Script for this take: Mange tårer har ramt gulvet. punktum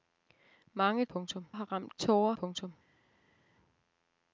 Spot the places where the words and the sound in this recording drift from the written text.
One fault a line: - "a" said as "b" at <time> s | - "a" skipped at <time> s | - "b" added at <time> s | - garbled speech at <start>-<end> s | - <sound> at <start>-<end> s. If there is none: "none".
- "tårer" said as "punktum" at 1.1 s
- "gulvet" said as "tårer" at 1.9 s